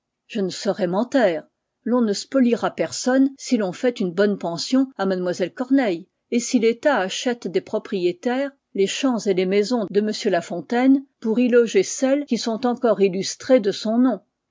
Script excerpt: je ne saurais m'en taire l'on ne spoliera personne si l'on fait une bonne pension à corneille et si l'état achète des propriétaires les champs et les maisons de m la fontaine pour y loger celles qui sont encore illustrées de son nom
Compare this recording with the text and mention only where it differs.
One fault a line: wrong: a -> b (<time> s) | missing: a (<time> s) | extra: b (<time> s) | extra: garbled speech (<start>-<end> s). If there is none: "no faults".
extra: mlle (5.0 s)